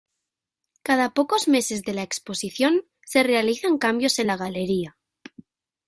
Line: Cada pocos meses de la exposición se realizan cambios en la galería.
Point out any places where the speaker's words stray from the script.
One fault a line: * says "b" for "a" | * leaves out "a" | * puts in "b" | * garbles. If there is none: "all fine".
all fine